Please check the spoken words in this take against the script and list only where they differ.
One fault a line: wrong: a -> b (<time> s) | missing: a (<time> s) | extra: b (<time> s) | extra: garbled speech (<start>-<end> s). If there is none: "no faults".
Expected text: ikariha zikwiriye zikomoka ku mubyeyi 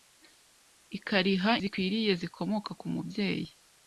no faults